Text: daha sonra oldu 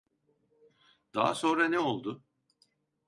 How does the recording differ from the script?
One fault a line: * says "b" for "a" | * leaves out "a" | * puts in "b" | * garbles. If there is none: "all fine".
* puts in "ne"